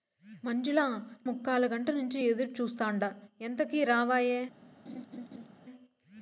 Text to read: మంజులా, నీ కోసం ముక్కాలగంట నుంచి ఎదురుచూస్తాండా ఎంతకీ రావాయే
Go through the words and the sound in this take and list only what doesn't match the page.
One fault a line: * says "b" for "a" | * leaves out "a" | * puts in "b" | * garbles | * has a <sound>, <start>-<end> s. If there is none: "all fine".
* leaves out "నీ కోసం"
* has a laugh, 4.9-5.5 s